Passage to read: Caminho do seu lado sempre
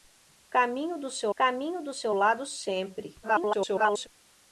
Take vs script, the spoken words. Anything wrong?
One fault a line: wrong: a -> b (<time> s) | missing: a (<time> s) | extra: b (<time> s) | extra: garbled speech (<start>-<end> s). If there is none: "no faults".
extra: caminho do seu (1.3 s)
extra: garbled speech (3.2-4.1 s)